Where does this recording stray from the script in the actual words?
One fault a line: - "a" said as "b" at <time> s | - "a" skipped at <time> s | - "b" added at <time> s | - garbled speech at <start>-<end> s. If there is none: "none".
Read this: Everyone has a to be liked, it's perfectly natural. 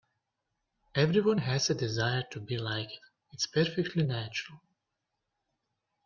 - "desire" added at 1.7 s